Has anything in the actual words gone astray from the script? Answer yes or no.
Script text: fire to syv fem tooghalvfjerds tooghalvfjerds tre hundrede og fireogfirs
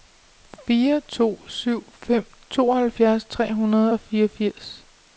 yes